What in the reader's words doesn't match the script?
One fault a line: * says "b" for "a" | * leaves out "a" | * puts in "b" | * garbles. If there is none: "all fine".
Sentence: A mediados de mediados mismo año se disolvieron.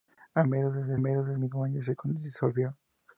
all fine